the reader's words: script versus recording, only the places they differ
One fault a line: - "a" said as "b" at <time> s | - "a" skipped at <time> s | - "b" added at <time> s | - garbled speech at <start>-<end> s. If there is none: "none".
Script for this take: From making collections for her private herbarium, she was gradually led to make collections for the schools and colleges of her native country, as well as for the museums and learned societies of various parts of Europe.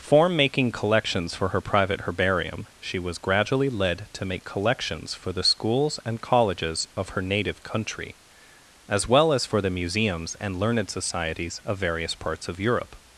- "From" said as "Form" at 0.0 s